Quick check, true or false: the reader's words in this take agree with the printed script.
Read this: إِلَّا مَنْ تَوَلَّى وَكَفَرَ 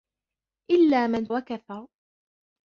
false